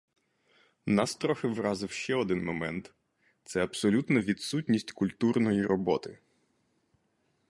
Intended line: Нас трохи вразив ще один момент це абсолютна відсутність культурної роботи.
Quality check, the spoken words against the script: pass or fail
pass